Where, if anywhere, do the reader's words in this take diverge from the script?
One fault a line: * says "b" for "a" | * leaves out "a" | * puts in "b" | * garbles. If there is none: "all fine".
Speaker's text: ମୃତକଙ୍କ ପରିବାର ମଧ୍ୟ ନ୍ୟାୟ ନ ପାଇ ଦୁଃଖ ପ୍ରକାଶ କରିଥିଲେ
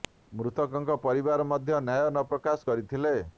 * leaves out "ପାଇ ଦୁଃଖ"